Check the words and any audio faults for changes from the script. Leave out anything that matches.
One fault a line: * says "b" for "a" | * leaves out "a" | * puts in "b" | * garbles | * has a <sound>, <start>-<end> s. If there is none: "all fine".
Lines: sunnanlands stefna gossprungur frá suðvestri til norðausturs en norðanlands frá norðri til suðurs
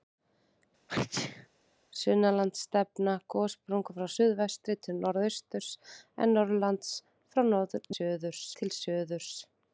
* has a sneeze, 0.9-1.5 s
* says "suðurs" for "norðri"